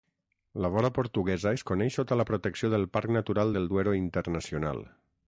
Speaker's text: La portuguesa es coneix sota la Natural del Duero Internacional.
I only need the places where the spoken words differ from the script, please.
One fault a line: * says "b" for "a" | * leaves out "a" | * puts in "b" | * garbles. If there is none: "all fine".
* puts in "vora"
* puts in "protecció del Parc"